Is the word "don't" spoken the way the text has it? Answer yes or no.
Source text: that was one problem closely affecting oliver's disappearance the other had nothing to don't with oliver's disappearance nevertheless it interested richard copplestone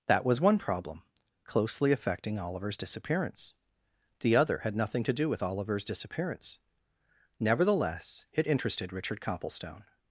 no